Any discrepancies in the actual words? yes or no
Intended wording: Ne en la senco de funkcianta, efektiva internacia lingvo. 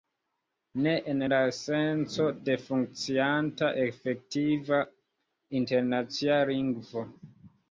no